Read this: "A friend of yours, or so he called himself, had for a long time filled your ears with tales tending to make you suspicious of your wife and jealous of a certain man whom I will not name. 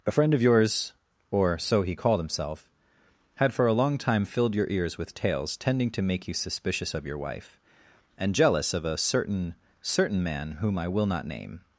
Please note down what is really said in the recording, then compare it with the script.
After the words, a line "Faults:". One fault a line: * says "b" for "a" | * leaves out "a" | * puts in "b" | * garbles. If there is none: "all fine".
"A friend of yours, or so he called himself, had for a long time filled your ears with tales tending to make you suspicious of your wife and jealous of a certain certain man whom I will not name.
Faults:
* puts in "certain"